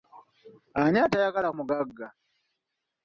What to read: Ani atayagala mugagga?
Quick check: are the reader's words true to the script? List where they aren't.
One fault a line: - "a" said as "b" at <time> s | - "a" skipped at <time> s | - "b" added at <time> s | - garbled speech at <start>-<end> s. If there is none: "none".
none